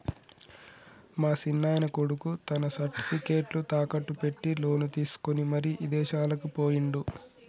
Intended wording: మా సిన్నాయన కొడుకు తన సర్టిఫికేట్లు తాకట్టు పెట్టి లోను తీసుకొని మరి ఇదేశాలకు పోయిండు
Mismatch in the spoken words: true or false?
false